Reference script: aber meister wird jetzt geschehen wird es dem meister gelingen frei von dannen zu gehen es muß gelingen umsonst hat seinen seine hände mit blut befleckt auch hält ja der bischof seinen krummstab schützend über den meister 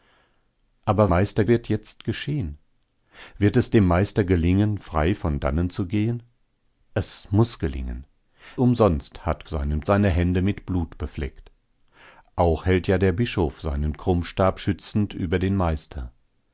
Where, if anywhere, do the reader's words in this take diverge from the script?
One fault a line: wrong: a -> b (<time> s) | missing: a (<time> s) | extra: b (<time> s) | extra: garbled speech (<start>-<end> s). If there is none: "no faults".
no faults